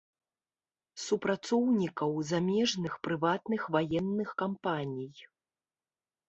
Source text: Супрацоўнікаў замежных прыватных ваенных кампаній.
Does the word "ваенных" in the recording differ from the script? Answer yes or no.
no